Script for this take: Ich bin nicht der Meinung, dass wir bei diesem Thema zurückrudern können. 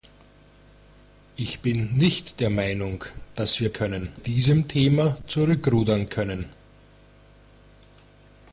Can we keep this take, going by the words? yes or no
no